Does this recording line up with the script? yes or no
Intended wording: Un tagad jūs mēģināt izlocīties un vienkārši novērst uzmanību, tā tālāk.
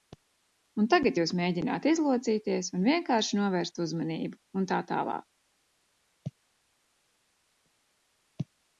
no